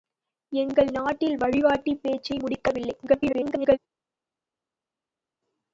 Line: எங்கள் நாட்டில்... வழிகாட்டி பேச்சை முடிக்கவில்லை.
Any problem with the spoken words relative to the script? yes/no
yes